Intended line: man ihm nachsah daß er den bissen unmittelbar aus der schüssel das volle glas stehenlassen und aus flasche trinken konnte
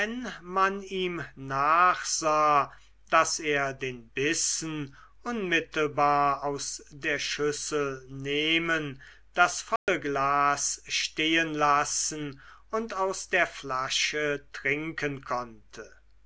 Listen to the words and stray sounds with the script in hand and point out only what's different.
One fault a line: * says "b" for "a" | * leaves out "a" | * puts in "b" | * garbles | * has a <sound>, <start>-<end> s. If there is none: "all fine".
* puts in "nehmen"
* has a dropout, 9.8-9.9 s
* puts in "der"